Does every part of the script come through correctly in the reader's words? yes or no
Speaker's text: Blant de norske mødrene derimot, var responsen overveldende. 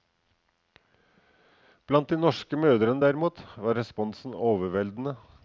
yes